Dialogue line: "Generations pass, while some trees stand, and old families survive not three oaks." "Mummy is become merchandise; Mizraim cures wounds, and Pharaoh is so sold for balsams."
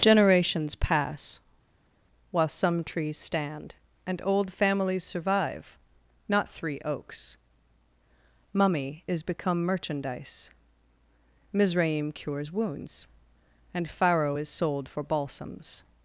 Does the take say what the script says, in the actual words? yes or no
no